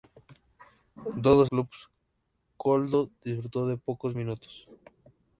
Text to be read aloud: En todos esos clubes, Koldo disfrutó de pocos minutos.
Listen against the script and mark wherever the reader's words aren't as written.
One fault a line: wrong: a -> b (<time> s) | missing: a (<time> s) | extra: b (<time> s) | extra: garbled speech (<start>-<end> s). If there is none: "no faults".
missing: esos (1.5 s)